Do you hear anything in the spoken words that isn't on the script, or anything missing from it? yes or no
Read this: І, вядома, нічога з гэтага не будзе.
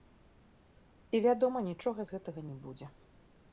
no